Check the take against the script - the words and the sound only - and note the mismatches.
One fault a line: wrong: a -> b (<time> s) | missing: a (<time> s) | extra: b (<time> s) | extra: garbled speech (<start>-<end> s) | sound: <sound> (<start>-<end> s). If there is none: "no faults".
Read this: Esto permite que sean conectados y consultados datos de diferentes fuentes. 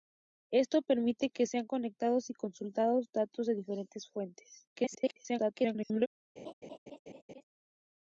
extra: garbled speech (4.7-6.1 s)
sound: laugh (6.4-7.4 s)